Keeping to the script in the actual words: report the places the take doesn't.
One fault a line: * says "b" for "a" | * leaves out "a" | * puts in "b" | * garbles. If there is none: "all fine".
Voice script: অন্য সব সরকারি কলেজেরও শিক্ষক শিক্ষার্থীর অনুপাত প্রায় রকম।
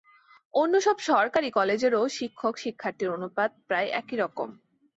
* puts in "একই"